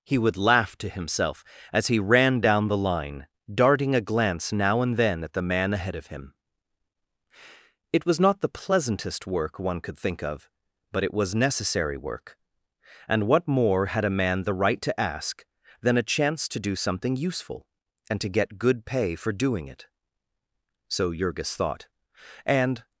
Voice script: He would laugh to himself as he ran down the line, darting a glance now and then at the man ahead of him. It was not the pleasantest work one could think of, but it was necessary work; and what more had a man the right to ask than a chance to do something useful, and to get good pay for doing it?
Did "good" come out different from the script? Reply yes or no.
no